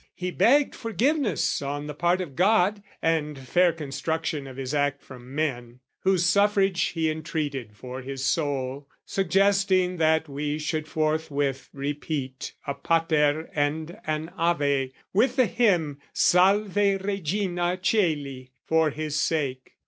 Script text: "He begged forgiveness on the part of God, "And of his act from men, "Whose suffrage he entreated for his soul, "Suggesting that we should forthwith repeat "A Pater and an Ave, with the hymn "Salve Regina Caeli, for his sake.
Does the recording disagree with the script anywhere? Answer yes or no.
yes